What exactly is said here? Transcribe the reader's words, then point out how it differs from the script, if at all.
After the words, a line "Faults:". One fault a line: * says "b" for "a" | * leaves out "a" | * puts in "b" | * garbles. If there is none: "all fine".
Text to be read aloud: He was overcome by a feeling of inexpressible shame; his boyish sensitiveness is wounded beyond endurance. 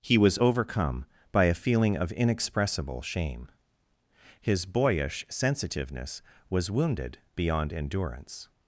He was overcome by a feeling of inexpressible shame; his boyish sensitiveness was wounded beyond endurance.
Faults:
* says "was" for "is"